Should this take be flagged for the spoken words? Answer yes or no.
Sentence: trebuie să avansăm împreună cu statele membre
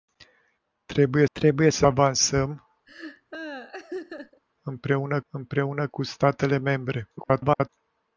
yes